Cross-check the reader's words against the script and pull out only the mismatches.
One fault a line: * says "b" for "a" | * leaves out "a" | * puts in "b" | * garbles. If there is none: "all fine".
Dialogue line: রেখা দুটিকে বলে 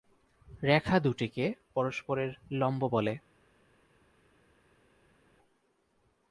* puts in "পরস্পরের লম্ব"